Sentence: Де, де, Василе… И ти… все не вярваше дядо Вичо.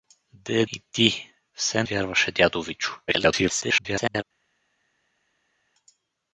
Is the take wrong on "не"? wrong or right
wrong